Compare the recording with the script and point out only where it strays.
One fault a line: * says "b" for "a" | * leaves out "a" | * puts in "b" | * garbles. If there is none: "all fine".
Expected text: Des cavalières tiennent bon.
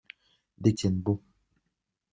* leaves out "cavalières"